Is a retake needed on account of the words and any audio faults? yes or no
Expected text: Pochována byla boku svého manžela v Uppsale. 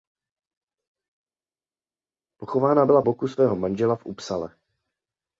no